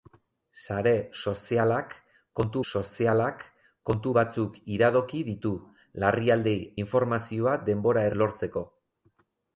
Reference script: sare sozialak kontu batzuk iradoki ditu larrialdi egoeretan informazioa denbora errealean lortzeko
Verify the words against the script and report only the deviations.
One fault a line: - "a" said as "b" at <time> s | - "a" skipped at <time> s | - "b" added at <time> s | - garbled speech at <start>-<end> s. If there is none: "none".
- "sozialak kontu" added at 2.7 s
- "egoeretan" skipped at 6.5 s
- "errealean" skipped at 8.1 s